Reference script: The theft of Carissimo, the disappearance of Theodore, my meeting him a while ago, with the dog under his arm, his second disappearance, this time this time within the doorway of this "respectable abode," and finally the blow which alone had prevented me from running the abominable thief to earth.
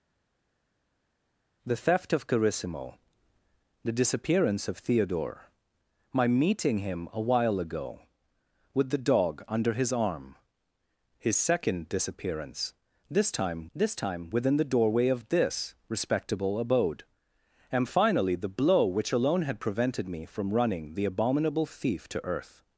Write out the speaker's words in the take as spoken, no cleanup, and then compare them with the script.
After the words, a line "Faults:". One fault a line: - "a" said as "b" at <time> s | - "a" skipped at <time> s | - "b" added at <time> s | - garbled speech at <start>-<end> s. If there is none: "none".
The theft of Carissimo, the disappearance of Theodore, my meeting him a while ago, with the dog under his arm, his second disappearance, this time this time within the doorway of this "respectable abode," and finally the blow which alone had prevented me from running the abominable thief to earth.
Faults:
none